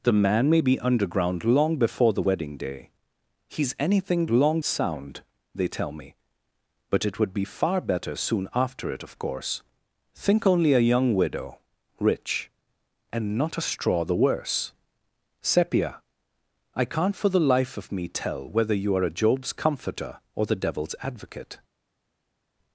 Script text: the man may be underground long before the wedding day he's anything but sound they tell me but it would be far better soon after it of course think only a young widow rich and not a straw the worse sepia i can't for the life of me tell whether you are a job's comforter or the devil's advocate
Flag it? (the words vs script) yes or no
yes